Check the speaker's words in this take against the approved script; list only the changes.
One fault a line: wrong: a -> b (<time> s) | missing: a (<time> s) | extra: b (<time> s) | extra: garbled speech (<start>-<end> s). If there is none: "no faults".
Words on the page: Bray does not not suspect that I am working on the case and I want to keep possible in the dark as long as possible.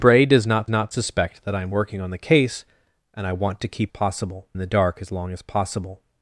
no faults